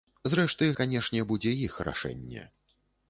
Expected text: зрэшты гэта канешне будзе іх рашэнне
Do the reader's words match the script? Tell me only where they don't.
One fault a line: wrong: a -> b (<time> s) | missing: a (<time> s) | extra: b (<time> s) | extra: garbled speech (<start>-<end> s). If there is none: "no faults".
missing: гэта (0.7 s)